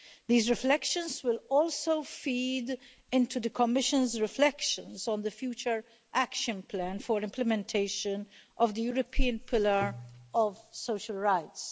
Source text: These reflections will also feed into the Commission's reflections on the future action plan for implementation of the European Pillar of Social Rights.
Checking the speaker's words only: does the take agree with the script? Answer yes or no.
yes